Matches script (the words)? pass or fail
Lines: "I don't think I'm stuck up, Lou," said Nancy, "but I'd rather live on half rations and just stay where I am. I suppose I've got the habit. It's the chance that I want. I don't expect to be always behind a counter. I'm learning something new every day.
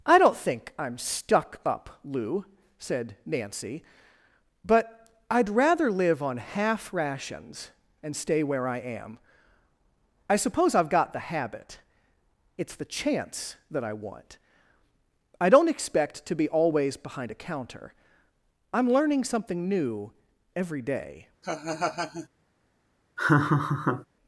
fail